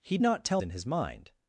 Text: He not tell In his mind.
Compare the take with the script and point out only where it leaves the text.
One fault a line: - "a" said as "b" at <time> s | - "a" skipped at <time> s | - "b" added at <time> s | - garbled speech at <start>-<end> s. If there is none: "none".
none